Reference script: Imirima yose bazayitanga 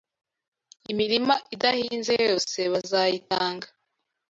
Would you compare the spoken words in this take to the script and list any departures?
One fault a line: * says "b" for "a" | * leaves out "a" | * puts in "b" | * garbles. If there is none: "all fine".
* puts in "idahinze"